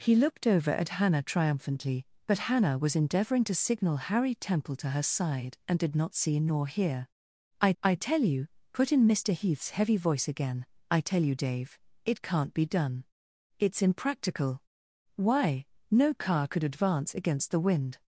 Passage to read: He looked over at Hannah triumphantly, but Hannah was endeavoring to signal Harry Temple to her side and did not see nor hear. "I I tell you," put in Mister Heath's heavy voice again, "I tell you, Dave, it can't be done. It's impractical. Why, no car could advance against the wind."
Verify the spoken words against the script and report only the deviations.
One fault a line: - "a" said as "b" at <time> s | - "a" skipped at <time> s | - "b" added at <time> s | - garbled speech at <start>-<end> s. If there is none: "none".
none